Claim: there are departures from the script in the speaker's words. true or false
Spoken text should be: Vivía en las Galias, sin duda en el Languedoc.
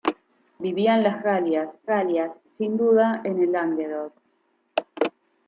true